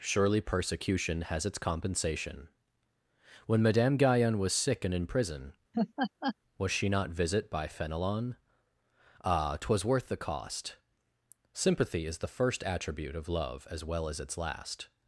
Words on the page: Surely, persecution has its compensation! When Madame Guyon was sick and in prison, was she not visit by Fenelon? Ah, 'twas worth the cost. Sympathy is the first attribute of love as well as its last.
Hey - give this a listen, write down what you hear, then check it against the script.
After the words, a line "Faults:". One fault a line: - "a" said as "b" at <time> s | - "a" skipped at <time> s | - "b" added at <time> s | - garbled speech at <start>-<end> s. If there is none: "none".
Surely, persecution has its compensation! When Madame Guyon was sick and in prison, was she not visit by Fenelon? Ah, 'twas worth the cost. Sympathy is the first attribute of love as well as its last.
Faults:
none